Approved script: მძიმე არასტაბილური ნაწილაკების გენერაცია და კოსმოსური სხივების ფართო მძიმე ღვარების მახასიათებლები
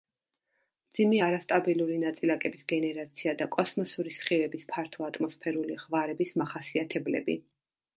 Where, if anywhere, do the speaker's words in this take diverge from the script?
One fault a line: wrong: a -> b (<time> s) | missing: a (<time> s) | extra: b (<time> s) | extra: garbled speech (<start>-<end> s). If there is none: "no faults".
wrong: მძიმე -> ატმოსფერული (5.1 s)